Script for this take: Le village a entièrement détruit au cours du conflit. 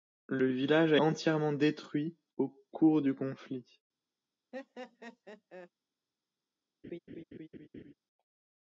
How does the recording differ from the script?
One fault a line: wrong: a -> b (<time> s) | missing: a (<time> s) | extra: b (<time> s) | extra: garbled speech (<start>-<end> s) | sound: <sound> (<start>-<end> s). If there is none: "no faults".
sound: laugh (4.5-5.7 s)
sound: laugh (6.8-7.9 s)